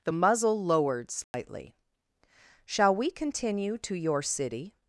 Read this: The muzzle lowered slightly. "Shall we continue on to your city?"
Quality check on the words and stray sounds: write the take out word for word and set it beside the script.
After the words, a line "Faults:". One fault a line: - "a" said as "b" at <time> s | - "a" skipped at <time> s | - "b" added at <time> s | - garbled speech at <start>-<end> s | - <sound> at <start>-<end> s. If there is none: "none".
The muzzle lowered slightly. "Shall we continue to your city?"
Faults:
- dropout at 1.2-1.3 s
- "on" skipped at 3.8 s